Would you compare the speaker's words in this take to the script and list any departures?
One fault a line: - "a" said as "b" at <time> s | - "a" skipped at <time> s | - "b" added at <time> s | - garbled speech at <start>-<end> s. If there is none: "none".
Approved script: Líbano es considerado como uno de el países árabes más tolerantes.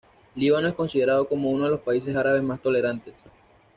- "el" said as "los" at 1.7 s